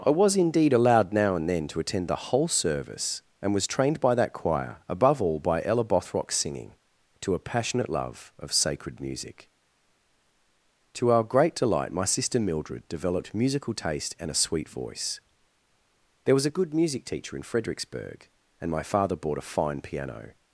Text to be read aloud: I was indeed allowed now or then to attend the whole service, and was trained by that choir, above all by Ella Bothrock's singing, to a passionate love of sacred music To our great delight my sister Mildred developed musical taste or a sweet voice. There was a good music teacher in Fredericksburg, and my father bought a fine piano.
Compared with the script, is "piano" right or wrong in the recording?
right